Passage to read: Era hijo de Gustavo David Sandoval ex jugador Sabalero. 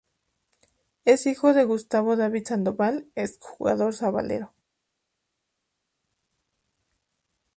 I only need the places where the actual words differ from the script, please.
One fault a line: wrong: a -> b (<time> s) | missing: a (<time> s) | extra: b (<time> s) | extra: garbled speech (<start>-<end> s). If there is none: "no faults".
wrong: Era -> Es (1.1 s)